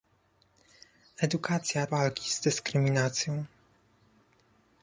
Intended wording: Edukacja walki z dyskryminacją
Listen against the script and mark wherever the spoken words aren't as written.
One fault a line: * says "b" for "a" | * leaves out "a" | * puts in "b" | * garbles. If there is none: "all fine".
all fine